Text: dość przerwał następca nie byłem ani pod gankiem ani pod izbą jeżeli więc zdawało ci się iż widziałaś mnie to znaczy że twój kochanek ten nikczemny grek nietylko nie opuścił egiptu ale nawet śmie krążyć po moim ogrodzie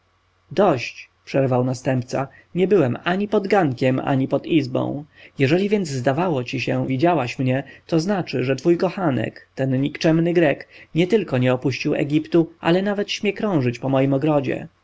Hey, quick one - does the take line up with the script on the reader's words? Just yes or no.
no